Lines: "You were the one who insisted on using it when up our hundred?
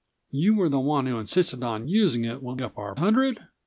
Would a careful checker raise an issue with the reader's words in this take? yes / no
no